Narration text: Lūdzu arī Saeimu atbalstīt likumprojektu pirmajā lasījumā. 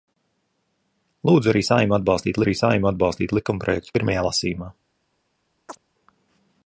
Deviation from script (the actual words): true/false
true